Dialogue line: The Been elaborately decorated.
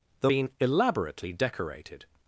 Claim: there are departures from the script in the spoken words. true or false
false